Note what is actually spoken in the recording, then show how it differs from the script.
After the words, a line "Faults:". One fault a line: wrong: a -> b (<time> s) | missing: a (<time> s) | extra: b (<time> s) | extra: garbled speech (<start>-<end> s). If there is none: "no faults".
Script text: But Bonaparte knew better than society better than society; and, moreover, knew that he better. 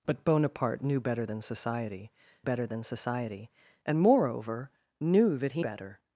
But Bonaparte knew better than society better than society; and, moreover, knew that he better.
Faults:
no faults